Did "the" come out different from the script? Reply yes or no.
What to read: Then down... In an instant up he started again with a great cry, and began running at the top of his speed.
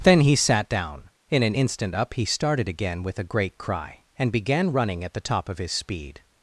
no